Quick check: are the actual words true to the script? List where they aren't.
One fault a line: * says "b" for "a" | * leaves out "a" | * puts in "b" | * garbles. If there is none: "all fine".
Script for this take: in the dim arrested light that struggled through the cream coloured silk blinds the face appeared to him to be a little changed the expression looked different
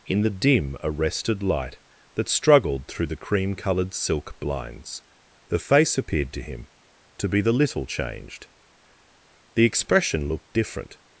* says "the" for "a"